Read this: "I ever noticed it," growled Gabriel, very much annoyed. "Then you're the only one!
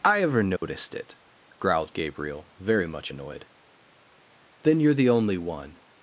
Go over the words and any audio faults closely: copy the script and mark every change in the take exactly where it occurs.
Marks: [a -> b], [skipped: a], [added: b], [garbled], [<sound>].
"I ever noticed [dropout] it," growled Gabriel, very much annoyed. "Then you're the only one!